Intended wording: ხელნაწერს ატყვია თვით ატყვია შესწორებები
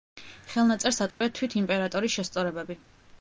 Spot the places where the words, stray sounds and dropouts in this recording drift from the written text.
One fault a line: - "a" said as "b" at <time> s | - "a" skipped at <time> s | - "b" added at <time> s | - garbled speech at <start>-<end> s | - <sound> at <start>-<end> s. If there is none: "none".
- dropout at 1.1-1.2 s
- "ატყვია" said as "იმპერატორის" at 1.6 s